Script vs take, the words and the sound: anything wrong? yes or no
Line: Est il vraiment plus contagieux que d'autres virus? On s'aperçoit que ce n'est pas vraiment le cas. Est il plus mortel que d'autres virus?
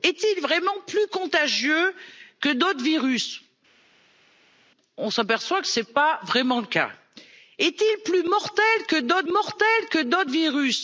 yes